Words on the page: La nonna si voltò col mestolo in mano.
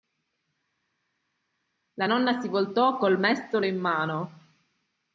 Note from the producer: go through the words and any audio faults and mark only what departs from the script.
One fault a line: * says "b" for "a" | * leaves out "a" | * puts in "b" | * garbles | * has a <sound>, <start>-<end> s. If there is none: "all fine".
all fine